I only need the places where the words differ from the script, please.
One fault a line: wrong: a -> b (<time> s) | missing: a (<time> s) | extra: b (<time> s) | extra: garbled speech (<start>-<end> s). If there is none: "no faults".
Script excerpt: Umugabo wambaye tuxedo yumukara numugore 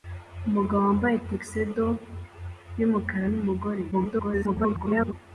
extra: garbled speech (3.9-5.1 s)